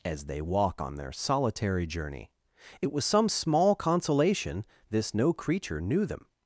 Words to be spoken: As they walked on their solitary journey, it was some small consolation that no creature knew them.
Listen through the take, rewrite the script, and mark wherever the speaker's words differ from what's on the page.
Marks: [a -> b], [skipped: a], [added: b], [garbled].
As they [walked -> walk] on their solitary journey, it was some small consolation [that -> this] no creature knew them.